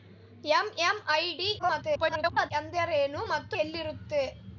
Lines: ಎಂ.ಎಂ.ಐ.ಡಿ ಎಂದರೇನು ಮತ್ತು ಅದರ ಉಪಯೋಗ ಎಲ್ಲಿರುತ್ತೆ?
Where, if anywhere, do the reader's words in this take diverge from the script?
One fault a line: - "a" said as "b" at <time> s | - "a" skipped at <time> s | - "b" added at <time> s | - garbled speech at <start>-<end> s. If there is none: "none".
- garbled speech at 1.6-2.5 s
- "ಅದರ ಉಪಯೋಗ" skipped at 3.6 s